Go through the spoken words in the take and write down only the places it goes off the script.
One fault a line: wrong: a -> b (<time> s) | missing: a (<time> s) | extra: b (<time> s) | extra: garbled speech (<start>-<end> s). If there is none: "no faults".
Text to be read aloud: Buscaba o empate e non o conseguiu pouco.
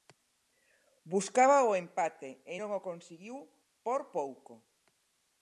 extra: por (3.8 s)